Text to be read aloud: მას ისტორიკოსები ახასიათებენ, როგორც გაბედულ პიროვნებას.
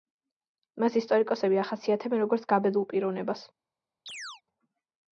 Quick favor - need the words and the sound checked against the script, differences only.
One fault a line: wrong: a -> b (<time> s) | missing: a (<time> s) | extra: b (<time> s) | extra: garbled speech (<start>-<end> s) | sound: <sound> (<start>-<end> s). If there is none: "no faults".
sound: chirp (4.1-4.4 s)